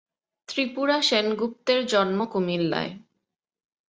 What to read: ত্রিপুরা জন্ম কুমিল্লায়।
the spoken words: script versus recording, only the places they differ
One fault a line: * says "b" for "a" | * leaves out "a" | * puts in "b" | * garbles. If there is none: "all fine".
* puts in "সেনগুপ্তের"